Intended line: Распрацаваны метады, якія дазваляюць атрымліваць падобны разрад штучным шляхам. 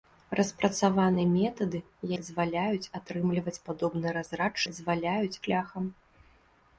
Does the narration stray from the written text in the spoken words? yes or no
yes